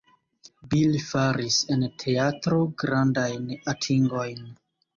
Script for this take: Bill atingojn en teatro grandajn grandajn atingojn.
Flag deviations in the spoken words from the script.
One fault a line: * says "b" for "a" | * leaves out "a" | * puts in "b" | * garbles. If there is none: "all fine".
* says "faris" for "atingojn"
* leaves out "grandajn"